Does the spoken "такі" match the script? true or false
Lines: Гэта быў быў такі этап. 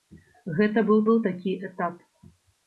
true